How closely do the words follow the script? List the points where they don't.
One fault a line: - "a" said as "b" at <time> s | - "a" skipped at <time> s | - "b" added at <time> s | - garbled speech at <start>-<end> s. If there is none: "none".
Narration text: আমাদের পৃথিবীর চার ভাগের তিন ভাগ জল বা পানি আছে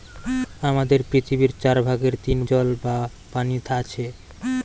- "ভাগ" skipped at 2.4 s